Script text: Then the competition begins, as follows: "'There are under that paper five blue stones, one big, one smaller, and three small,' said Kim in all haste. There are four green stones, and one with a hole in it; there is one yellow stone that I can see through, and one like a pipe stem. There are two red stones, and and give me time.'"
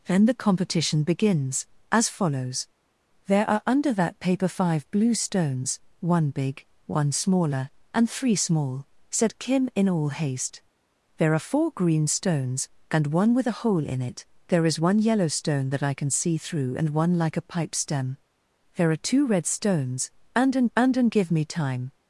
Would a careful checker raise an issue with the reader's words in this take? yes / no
yes